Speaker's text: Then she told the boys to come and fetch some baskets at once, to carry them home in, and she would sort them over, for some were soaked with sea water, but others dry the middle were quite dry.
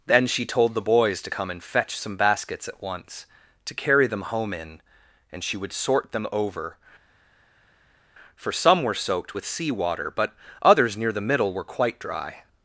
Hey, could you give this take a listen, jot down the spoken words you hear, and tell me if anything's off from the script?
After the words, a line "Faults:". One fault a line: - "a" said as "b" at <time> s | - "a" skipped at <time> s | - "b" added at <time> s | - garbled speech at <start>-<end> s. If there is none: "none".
Then she told the boys to come and fetch some baskets at once, to carry them home in, and she would sort them over, for some were soaked with sea water, but others near the middle were quite dry.
Faults:
- "dry" said as "near" at 11.0 s